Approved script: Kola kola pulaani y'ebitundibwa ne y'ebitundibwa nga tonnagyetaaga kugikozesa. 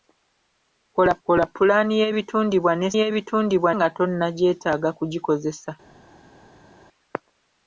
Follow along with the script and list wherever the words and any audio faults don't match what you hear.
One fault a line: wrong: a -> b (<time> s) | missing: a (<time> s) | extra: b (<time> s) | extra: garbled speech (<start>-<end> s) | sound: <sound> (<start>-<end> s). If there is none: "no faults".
no faults